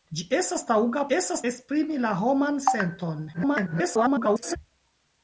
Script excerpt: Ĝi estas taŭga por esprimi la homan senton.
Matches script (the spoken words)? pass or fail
fail